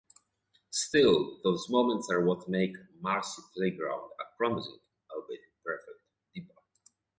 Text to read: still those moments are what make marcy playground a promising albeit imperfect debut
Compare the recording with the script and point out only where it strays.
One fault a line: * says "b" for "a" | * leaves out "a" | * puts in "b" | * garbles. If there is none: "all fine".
all fine